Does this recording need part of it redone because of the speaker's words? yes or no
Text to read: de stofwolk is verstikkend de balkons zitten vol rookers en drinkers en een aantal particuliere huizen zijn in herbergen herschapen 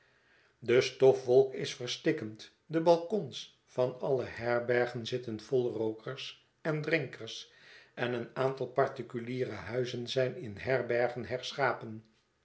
yes